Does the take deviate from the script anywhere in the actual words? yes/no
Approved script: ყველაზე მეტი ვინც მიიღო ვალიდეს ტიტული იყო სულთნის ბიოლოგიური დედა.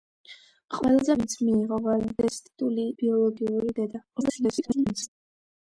yes